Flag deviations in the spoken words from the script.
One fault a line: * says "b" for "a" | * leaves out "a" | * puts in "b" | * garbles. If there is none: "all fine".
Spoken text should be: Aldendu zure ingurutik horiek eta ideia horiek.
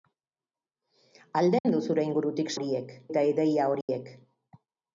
all fine